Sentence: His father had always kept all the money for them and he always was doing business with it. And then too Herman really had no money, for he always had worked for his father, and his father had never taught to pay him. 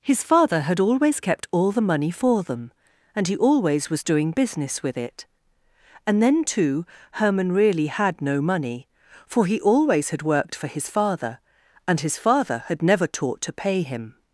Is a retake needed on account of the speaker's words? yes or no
no